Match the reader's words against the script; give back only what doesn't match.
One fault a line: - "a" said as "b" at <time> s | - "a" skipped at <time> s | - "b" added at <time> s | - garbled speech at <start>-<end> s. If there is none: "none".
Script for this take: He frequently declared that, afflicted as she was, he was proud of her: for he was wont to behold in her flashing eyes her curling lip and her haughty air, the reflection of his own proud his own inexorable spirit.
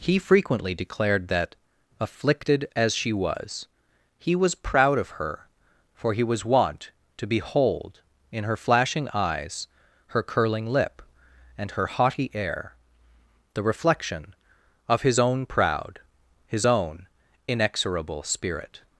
none